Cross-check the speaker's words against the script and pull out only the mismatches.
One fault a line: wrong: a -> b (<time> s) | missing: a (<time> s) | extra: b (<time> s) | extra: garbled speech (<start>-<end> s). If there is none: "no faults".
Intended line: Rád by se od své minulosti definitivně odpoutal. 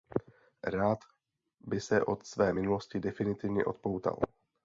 no faults